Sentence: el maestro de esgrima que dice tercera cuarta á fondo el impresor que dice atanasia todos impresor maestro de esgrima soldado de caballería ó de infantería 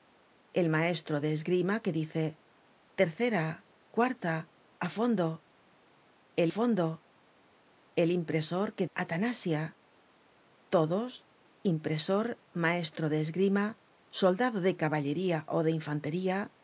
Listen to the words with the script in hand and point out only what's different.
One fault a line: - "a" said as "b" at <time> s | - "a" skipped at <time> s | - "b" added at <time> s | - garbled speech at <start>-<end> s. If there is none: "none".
- "fondo el" added at 6.5 s
- "dice" skipped at 8.9 s